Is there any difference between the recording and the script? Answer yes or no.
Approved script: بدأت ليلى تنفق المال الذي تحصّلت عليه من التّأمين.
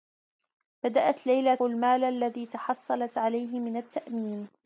yes